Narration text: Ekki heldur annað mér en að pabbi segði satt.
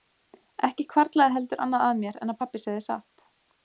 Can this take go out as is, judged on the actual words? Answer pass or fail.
fail